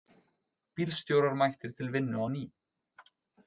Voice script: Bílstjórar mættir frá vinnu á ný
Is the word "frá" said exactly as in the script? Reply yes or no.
no